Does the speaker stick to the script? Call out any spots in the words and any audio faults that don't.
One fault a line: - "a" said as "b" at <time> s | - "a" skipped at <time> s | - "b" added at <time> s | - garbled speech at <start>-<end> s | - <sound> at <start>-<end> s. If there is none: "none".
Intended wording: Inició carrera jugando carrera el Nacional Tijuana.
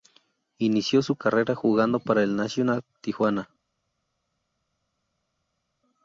- "su" added at 1.0 s
- "carrera" said as "para" at 2.0 s